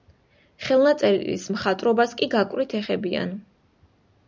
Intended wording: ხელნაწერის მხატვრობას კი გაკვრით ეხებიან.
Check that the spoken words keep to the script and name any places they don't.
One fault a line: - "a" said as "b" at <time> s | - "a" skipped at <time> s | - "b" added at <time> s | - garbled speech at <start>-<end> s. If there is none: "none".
none